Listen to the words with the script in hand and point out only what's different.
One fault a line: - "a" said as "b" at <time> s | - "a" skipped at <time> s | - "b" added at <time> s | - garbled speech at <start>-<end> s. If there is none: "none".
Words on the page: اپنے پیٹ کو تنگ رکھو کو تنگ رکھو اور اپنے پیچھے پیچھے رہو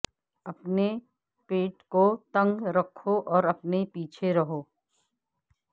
- "کو تنگ رکھو" skipped at 3.2 s
- "پیچھے" skipped at 4.3 s